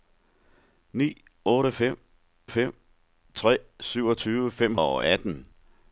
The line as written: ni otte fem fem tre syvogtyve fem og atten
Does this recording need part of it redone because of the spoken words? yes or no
no